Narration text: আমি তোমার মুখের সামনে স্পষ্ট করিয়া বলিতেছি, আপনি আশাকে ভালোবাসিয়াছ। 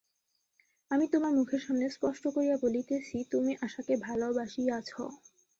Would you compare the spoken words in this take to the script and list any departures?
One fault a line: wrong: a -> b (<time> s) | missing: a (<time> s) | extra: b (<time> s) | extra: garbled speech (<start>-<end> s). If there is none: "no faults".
wrong: আপনি -> তুমি (3.3 s)